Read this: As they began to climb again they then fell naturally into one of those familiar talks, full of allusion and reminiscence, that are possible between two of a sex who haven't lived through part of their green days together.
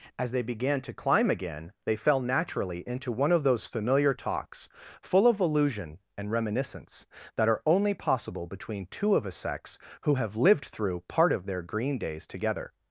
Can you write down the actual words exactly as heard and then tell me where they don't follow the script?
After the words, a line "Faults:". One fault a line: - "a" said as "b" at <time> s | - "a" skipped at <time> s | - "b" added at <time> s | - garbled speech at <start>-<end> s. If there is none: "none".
As they began to climb again they fell naturally into one of those familiar talks, full of allusion and reminiscence, that are only possible between two of a sex who have lived through part of their green days together.
Faults:
- "then" skipped at 1.9 s
- "only" added at 7.7 s
- "haven't" said as "have" at 10.2 s